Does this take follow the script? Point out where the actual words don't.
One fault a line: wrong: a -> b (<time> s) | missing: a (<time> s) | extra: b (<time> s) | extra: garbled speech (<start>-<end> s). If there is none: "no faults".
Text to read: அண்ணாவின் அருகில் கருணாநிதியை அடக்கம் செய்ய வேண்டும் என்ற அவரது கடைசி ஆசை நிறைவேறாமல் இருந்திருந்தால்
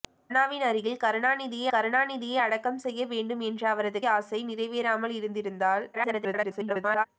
extra: கருணாநிதியை (1.7 s)
missing: கடைசி (4.0 s)
extra: garbled speech (5.9-7.1 s)